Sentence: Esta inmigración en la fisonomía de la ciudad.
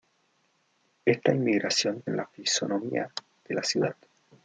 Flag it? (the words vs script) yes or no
no